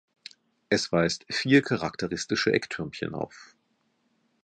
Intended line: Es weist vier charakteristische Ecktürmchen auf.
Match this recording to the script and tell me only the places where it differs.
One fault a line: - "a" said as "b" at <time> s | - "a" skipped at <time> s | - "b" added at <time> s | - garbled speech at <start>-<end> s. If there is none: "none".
none